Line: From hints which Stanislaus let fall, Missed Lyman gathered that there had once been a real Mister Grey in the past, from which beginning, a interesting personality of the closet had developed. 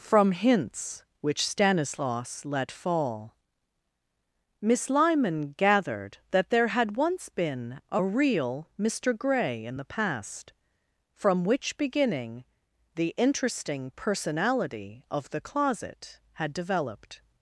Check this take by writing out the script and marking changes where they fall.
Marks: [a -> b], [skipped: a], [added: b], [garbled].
From hints which Stanislaus let fall, [Missed -> Miss] Lyman gathered that there had once been a real Mister Grey in the past, from which beginning, [a -> the] interesting personality of the closet had developed.